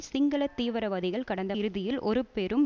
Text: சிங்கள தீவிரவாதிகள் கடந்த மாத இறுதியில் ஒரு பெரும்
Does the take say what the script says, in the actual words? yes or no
no